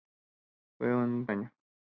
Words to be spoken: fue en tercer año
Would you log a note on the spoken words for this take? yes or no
yes